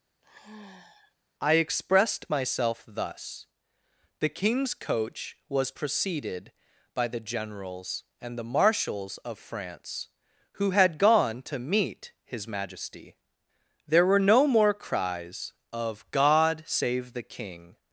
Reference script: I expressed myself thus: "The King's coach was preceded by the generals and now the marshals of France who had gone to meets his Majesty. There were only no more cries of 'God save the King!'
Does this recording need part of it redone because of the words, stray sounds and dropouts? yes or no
yes